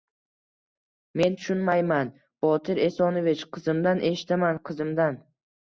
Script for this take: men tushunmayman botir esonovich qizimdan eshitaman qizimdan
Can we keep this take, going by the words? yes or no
yes